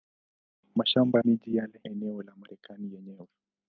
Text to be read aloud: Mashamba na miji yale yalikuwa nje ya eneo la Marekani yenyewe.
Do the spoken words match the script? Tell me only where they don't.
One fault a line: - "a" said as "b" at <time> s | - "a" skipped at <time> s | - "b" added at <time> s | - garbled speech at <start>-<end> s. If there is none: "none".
- "na" skipped at 1.2 s
- "yalikuwa nje ya" skipped at 1.8 s